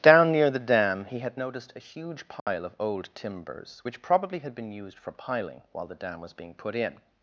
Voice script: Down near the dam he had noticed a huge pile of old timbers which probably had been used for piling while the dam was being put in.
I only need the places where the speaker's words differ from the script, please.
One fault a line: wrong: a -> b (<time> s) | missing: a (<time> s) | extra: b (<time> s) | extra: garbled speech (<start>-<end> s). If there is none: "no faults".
no faults